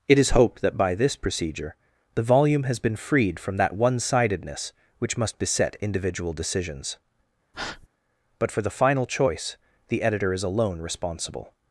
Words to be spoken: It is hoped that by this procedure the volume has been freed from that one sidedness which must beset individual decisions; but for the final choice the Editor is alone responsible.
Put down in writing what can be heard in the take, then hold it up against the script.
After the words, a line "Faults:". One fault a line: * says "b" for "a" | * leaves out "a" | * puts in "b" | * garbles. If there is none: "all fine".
It is hoped that by this procedure the volume has been freed from that one sidedness which must beset individual decisions; but for the final choice the Editor is alone responsible.
Faults:
all fine